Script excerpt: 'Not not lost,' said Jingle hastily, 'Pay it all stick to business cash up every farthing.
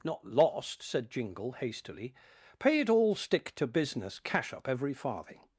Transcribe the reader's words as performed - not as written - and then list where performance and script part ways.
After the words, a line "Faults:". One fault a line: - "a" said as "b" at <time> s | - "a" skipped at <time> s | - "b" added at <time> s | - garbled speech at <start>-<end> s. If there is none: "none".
'Not lost,' said Jingle hastily, 'Pay it all stick to business cash up every farthing.
Faults:
- "not" skipped at 0.2 s